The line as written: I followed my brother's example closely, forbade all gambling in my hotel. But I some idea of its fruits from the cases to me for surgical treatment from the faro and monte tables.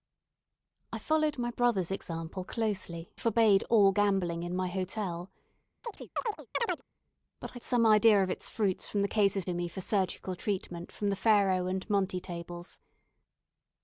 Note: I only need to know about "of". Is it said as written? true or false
true